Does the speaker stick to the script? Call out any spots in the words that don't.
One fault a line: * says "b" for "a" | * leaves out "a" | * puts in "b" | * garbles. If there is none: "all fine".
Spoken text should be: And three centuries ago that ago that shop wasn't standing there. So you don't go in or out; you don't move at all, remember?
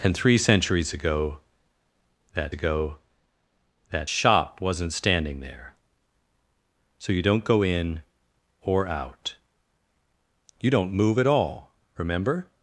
all fine